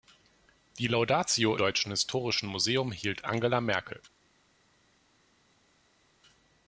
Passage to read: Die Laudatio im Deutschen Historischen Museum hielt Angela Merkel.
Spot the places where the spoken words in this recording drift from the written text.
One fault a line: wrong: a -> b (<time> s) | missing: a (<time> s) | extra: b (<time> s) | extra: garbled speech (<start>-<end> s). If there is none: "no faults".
missing: im (1.6 s)